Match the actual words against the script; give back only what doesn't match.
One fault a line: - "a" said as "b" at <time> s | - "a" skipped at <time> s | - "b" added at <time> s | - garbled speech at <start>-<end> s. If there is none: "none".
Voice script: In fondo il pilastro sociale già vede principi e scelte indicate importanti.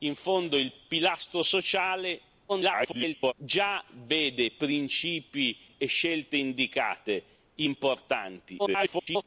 - garbled speech at 2.5-3.3 s
- garbled speech at 8.6-9.2 s